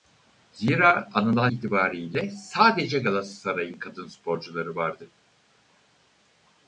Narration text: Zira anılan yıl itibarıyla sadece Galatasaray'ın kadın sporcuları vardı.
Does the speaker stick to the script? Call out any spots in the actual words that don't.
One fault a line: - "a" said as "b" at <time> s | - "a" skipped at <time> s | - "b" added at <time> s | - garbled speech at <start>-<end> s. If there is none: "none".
- "yıl" skipped at 1.5 s